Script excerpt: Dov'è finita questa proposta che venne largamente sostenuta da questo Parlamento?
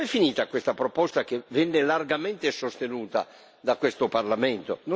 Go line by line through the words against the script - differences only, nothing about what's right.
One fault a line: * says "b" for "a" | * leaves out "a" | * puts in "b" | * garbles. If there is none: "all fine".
all fine